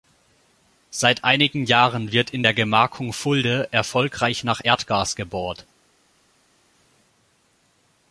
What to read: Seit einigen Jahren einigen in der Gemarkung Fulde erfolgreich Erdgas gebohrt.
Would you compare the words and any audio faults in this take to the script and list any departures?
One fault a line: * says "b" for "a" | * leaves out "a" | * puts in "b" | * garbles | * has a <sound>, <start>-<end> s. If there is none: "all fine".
* says "wird" for "einigen"
* puts in "nach"